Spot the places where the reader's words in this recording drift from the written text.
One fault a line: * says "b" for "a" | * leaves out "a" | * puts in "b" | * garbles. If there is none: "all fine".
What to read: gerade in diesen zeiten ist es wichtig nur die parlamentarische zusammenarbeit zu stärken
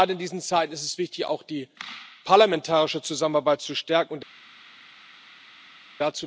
* says "auch" for "nur"